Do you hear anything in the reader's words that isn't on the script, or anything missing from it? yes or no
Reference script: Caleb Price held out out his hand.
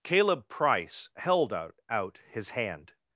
no